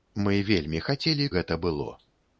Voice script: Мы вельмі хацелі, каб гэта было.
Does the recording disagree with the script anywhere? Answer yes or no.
yes